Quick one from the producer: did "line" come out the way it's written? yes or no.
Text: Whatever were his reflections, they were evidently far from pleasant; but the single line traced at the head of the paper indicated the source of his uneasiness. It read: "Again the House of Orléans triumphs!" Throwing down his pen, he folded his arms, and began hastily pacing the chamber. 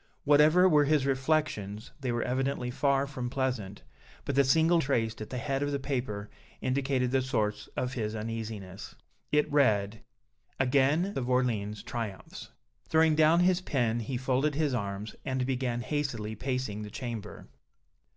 no